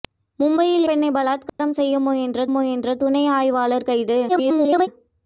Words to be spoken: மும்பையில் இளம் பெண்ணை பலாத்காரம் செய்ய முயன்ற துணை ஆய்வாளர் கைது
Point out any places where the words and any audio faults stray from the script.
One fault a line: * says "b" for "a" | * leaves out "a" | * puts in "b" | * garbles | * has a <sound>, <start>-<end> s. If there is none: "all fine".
* leaves out "இளம்"
* has a dropout, 1.5-1.6 s
* puts in "முயன்ற"
* garbles